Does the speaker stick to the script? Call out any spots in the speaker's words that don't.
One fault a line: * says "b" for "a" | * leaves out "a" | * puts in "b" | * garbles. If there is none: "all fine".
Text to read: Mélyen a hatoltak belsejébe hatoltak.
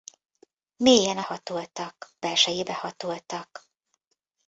all fine